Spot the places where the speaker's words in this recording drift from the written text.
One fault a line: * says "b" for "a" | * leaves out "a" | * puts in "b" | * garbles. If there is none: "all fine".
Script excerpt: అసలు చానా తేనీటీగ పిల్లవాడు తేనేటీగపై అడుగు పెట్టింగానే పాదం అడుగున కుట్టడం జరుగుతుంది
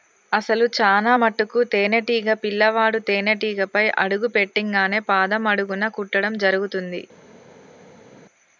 * puts in "మటుకు"